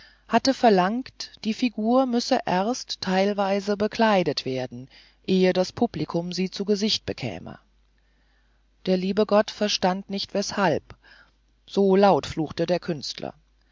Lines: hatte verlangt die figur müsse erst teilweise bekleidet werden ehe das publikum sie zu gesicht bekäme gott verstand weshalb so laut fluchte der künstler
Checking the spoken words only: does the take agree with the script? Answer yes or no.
no